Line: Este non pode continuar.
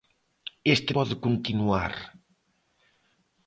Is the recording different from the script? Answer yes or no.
yes